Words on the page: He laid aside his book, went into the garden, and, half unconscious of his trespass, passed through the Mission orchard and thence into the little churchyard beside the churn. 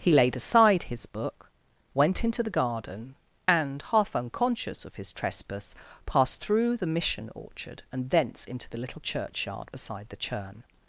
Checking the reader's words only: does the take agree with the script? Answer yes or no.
yes